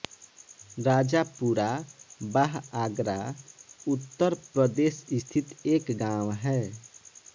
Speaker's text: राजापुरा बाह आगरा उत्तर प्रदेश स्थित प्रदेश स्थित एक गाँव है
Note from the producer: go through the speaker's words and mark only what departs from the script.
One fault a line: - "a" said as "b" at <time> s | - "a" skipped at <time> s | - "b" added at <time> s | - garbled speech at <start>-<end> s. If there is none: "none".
- "प्रदेश स्थित" skipped at 5.5 s